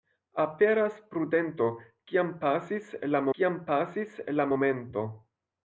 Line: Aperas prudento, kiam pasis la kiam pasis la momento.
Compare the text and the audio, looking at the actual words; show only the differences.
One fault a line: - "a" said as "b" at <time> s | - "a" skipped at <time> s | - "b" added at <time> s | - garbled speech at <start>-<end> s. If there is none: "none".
none